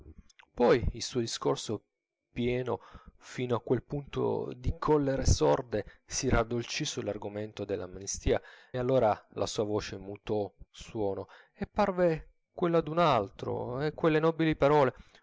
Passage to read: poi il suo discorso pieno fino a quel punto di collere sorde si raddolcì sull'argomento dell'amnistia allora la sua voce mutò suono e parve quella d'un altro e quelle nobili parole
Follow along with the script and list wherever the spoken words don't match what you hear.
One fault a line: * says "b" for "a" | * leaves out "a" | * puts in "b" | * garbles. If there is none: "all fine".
all fine